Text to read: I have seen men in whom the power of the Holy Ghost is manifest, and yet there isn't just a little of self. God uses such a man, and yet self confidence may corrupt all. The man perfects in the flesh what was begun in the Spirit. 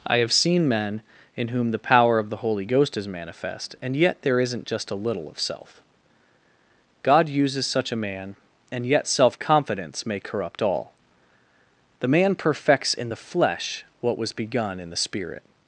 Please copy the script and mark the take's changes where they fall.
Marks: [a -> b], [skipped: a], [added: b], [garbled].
I have seen men in whom the power of the Holy Ghost is manifest, and yet there isn't just a little of self. God uses such a man, and yet self confidence may corrupt all. The man perfects in the flesh what was begun in the Spirit.